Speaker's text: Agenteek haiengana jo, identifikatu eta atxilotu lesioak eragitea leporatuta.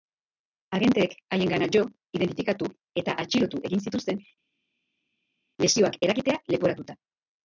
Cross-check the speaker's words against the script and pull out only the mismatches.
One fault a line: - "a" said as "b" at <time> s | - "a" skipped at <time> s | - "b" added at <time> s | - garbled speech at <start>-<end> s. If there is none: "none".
- "egin zituzten" added at 3.7 s